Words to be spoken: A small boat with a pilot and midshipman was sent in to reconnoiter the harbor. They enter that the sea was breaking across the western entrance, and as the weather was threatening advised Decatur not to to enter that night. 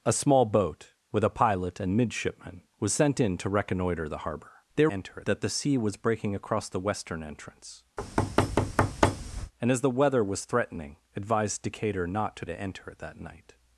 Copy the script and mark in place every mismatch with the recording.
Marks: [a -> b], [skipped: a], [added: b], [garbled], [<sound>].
A small boat with a pilot and midshipman was sent in to reconnoiter the harbor. They enter that the sea was breaking across the western entrance, [thud] and as the weather was threatening advised Decatur not to to enter that night.